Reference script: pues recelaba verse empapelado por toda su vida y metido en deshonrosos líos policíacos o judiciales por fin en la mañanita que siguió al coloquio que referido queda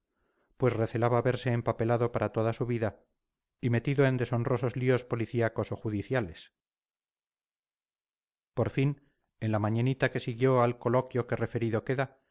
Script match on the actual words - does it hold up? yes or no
no